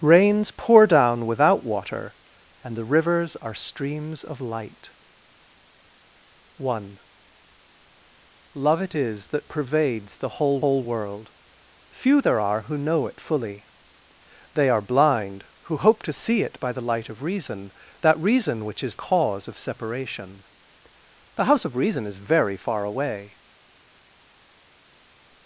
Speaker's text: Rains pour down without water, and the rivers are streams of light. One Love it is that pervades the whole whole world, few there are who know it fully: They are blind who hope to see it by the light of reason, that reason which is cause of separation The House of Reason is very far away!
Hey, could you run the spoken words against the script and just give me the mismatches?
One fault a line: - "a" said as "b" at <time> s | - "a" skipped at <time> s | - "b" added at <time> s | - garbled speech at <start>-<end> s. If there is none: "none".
none